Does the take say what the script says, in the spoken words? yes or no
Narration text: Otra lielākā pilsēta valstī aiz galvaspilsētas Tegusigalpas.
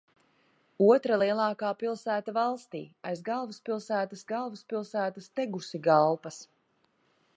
no